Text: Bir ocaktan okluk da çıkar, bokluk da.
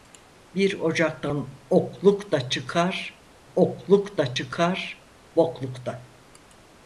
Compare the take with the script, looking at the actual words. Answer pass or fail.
fail